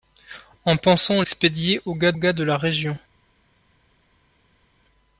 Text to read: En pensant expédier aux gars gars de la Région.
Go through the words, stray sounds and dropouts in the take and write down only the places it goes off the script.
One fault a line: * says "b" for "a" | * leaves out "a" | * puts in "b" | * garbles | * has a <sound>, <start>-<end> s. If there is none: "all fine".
all fine